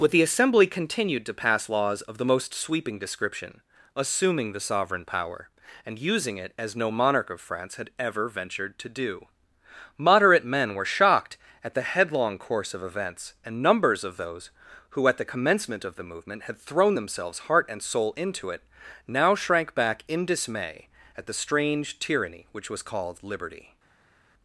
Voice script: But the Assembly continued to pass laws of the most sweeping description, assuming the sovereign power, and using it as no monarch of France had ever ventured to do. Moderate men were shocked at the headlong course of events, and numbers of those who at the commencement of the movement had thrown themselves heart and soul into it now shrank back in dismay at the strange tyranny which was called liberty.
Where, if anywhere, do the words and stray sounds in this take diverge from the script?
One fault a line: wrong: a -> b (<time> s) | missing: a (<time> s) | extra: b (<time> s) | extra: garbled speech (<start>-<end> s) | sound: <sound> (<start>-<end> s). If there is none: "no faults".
no faults